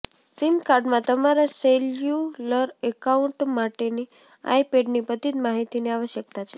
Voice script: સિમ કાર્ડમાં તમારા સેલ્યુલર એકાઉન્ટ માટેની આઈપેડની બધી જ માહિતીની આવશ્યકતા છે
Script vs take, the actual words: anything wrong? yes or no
no